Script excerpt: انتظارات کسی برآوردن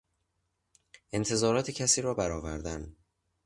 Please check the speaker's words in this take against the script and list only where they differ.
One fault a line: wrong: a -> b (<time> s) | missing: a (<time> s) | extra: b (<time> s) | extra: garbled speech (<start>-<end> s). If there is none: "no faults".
extra: را (2.0 s)